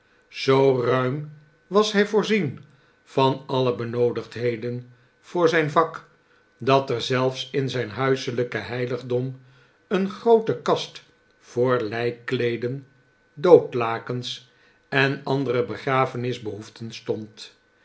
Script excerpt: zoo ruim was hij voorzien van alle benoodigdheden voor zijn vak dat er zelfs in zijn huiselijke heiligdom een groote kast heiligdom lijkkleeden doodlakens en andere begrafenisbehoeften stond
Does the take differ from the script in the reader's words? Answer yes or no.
yes